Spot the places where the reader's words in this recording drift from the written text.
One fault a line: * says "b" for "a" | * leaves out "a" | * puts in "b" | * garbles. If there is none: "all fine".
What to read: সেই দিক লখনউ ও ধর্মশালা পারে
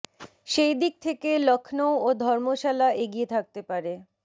* puts in "থেকে"
* puts in "এগিয়ে থাকতে"